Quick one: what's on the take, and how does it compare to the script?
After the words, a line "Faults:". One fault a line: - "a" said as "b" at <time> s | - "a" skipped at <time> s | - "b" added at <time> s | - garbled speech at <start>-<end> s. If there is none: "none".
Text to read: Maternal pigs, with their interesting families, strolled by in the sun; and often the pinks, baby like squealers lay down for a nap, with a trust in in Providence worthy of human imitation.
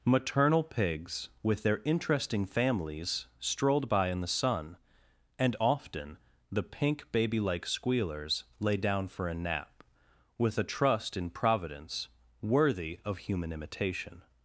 Maternal pigs, with their interesting families, strolled by in the sun; and often the pink, baby like squealers lay down for a nap, with a trust in Providence worthy of human imitation.
Faults:
- "pinks" said as "pink" at 6.6 s
- "in" skipped at 11.3 s